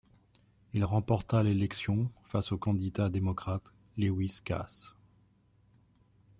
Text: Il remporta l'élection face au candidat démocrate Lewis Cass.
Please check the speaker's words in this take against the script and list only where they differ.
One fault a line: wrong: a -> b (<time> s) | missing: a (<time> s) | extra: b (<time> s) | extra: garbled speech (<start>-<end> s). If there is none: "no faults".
no faults